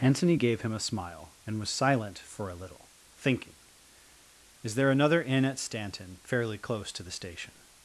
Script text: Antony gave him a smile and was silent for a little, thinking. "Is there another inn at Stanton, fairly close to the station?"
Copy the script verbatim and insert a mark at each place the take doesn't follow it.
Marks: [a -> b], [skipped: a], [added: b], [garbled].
Antony gave him a smile and was silent for a little, thinking. "Is there another inn at Stanton, fairly close to the station?"